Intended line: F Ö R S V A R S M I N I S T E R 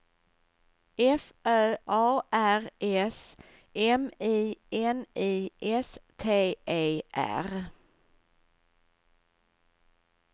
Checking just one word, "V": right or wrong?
wrong